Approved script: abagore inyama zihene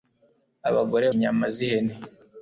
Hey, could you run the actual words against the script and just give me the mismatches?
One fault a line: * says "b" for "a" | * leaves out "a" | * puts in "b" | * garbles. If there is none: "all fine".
all fine